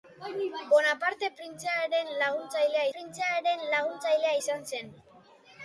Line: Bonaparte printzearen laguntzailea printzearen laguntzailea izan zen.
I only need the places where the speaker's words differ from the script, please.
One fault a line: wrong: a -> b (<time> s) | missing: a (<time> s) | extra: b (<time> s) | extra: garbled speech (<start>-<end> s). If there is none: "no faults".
no faults